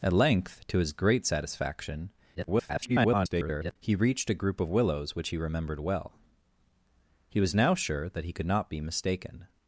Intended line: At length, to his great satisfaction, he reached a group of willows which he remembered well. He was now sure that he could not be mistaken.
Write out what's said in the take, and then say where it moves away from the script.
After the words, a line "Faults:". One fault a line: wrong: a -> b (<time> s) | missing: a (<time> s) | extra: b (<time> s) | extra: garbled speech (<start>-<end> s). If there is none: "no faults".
At length, to his great satisfaction, [garbled] he reached a group of willows which he remembered well. He was now sure that he could not be mistaken.
Faults:
extra: garbled speech (2.4-3.8 s)